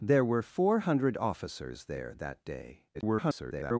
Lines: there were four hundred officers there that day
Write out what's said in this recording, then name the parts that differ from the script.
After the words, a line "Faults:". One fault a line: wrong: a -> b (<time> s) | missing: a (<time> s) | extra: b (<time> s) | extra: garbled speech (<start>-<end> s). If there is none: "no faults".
there were four hundred officers there that day [garbled]
Faults:
extra: garbled speech (2.9-3.8 s)